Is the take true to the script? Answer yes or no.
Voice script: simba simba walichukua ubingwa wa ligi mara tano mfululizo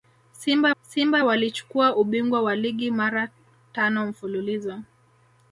yes